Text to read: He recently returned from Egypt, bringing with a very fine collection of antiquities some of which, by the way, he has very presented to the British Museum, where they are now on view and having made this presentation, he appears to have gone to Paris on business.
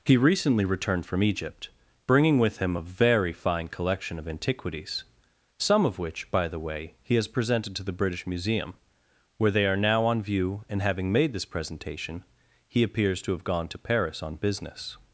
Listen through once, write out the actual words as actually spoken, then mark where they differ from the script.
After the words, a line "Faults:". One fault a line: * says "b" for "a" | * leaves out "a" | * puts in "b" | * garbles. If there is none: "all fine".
He recently returned from Egypt, bringing with him a very fine collection of antiquities some of which, by the way, he has presented to the British Museum, where they are now on view and having made this presentation, he appears to have gone to Paris on business.
Faults:
* puts in "him"
* leaves out "very"